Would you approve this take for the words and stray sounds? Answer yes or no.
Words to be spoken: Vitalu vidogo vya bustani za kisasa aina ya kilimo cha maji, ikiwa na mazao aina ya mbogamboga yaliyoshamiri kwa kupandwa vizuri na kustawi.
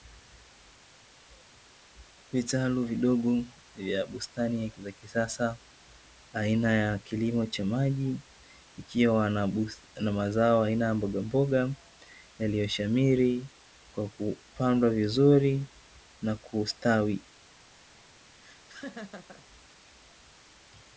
no